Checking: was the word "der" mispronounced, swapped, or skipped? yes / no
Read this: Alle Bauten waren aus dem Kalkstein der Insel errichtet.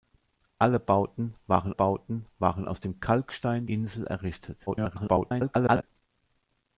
yes